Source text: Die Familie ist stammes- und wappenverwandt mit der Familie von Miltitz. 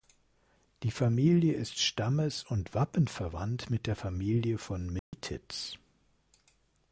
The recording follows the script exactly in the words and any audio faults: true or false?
false